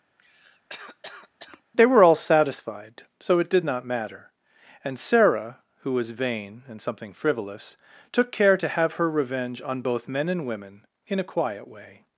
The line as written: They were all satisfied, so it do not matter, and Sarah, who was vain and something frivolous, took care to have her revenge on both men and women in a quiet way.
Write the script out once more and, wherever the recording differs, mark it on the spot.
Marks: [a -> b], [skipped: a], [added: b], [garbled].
They were all satisfied, so it [do -> did] not matter, and Sarah, who was vain and something frivolous, took care to have her revenge on both men and women in a quiet way.